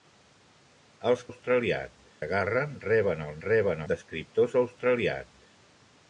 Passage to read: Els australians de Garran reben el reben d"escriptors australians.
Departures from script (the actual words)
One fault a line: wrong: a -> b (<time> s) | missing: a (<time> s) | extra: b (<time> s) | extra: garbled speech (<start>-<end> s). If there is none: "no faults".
no faults